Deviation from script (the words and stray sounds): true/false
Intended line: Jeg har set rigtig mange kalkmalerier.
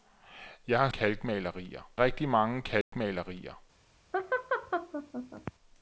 true